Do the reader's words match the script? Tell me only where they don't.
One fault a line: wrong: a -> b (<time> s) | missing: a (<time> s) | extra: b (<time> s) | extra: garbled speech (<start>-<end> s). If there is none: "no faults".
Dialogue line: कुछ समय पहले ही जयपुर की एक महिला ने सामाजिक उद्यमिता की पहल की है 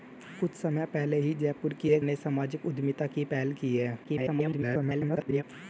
missing: महिला (2.0 s)
extra: garbled speech (4.0-5.4 s)